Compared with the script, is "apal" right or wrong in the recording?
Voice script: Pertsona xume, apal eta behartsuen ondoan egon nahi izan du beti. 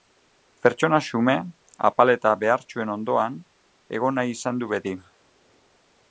right